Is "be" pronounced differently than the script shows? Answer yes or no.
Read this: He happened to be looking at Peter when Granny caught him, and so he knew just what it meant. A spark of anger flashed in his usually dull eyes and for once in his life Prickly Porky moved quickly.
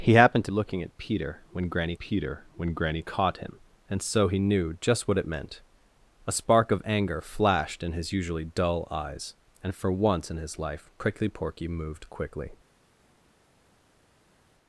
yes